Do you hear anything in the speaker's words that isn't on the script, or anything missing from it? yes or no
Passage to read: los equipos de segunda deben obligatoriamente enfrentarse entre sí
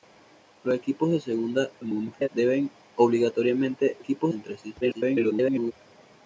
yes